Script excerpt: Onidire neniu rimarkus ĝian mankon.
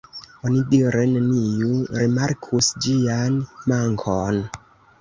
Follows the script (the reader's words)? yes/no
yes